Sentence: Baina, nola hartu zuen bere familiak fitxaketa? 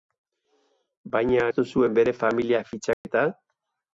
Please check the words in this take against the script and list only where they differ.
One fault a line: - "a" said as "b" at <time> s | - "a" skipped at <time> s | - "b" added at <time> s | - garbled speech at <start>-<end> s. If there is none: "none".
- "nola" skipped at 1.4 s